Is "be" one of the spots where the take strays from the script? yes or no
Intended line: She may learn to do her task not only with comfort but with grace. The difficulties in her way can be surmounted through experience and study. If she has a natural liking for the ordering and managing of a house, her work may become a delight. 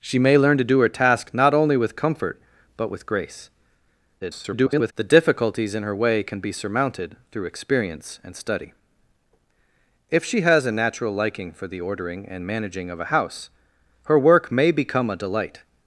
no